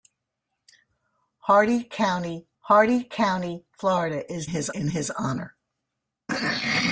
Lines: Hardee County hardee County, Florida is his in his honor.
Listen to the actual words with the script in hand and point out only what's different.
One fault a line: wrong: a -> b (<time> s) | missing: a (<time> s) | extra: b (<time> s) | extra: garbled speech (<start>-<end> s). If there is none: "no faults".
no faults